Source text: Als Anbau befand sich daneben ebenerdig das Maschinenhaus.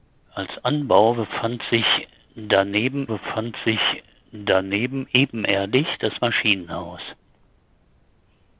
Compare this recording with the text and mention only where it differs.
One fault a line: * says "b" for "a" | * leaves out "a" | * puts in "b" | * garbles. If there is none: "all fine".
* puts in "befand sich daneben"